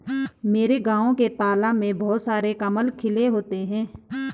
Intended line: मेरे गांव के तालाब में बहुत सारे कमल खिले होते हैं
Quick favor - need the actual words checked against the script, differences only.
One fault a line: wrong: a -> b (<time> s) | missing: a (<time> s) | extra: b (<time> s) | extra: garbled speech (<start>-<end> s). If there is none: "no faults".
no faults